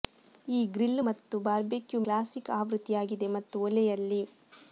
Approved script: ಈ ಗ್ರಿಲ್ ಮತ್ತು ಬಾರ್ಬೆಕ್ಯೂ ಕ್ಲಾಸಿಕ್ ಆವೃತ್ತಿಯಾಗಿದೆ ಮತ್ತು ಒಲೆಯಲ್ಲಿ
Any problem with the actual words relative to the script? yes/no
no